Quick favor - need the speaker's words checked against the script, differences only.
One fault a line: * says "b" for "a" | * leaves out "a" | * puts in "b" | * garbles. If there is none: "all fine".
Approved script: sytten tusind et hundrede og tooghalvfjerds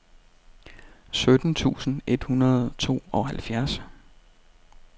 all fine